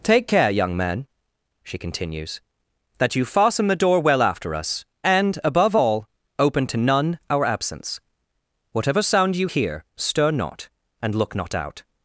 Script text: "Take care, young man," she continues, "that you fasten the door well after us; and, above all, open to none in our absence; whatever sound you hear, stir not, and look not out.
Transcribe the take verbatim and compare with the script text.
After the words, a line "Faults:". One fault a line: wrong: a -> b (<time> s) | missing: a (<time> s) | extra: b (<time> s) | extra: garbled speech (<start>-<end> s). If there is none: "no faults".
"Take care, young man," she continues, "that you fasten the door well after us; and, above all, open to none our absence; whatever sound you hear, stir not, and look not out.
Faults:
missing: in (7.2 s)